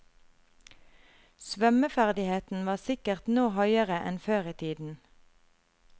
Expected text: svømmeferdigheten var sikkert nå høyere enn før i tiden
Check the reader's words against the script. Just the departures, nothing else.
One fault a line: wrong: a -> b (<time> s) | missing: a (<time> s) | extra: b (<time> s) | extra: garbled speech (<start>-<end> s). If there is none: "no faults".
no faults